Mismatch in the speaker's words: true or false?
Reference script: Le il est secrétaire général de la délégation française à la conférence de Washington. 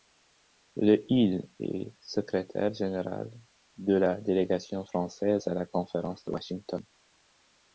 false